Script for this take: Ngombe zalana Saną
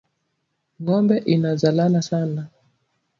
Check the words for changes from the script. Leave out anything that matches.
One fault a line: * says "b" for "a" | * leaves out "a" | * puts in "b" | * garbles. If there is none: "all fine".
* puts in "ina"